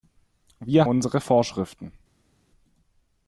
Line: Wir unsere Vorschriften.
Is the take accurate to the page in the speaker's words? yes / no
yes